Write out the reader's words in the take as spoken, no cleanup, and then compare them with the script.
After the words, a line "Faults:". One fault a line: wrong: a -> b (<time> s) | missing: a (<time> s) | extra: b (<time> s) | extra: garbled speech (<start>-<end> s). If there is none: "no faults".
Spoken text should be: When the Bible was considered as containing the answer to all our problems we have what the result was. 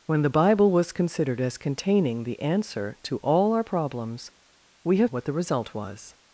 When the Bible was considered as containing the answer to all our problems we have what the result was.
Faults:
no faults